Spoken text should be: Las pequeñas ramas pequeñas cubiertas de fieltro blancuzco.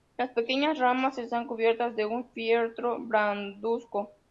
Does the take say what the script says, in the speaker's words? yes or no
no